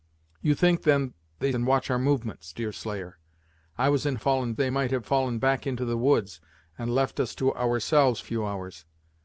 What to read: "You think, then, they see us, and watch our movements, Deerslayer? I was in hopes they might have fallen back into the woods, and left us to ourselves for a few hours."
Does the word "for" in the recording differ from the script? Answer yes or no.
yes